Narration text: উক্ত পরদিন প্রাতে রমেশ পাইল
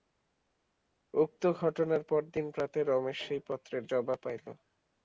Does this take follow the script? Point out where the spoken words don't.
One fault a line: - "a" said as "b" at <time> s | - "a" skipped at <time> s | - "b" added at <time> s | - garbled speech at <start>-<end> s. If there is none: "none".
- "ঘটনার" added at 1.6 s
- "সেই পত্রের জবাব" added at 3.2 s